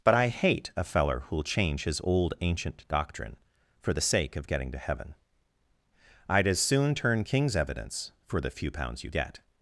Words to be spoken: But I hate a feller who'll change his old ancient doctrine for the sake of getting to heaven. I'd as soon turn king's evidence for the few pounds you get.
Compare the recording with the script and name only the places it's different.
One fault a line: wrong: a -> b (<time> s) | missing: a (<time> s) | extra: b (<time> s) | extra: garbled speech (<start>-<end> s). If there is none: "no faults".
no faults